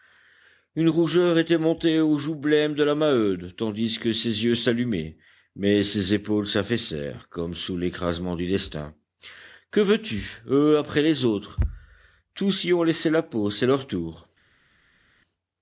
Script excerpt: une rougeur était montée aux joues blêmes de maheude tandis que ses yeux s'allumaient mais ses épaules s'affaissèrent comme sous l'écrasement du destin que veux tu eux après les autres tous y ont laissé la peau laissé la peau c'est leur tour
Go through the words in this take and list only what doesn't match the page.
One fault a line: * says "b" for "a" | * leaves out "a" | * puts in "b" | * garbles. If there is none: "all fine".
* puts in "la"
* leaves out "laissé la peau"